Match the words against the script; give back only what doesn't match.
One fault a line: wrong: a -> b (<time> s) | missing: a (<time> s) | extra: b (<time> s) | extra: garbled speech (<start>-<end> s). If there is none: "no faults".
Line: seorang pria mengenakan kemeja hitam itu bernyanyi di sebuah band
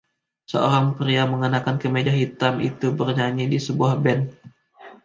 no faults